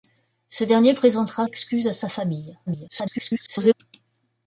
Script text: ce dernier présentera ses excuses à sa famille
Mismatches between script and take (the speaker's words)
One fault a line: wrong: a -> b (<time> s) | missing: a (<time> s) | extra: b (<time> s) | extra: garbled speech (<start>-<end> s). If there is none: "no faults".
missing: ses (1.4 s)
extra: garbled speech (2.7-3.7 s)